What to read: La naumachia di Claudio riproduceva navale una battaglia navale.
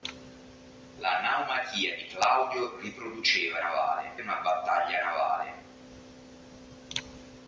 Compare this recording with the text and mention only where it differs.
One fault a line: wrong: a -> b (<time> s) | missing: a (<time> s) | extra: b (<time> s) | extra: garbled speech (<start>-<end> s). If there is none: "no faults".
no faults